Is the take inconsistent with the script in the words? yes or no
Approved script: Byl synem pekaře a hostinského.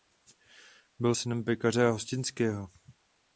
no